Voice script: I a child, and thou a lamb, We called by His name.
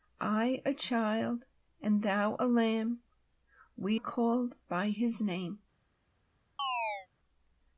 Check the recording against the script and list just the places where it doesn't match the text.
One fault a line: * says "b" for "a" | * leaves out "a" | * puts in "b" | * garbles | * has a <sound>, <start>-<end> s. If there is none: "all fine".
* has a chirp, 6.6-7.1 s